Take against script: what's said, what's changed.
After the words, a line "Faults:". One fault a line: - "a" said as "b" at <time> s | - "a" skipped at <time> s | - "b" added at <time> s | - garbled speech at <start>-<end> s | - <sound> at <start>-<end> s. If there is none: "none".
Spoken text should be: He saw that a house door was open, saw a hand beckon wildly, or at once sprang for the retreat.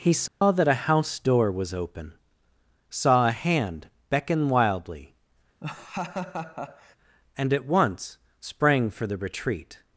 He saw that a house door was open, saw a hand beckon wildly, and at once sprang for the retreat.
Faults:
- dropout at 0.3-0.4 s
- laugh at 5.6-7.0 s
- "or" said as "and" at 7.4 s